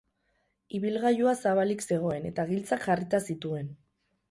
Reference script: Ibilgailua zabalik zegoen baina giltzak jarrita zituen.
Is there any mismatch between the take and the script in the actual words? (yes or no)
yes